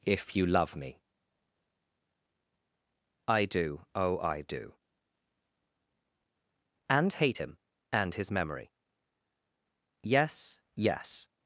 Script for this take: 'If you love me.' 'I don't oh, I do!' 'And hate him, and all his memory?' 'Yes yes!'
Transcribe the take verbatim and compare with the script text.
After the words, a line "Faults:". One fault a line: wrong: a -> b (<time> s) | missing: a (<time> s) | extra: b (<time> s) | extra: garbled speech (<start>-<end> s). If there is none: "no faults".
'If you love me.' 'I do oh, I do!' 'And hate him, and his memory?' 'Yes yes!'
Faults:
wrong: don't -> do (3.5 s)
missing: all (8.1 s)